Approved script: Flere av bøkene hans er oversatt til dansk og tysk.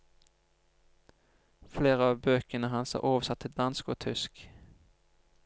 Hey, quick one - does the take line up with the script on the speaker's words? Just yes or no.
yes